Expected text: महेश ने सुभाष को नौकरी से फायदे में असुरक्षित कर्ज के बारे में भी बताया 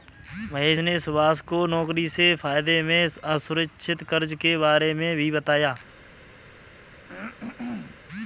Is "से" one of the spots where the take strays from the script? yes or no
no